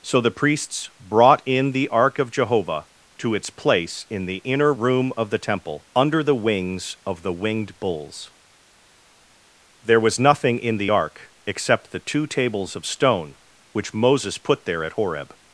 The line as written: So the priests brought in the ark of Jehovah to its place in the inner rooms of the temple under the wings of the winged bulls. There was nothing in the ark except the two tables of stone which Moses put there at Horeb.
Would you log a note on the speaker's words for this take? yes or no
yes